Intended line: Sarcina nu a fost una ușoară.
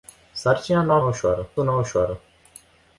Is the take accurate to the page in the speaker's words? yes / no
no